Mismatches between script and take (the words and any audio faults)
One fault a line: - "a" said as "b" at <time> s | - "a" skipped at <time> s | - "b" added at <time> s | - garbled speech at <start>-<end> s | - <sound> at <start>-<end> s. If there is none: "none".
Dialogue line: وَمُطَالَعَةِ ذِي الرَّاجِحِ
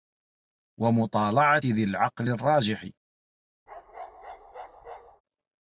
- "الْعَقْلِ" added at 1.8 s
- bark at 3.7-5.2 s